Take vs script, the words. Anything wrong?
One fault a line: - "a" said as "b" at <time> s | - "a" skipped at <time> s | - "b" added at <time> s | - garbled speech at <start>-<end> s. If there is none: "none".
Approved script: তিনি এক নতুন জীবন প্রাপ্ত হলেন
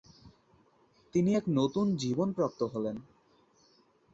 none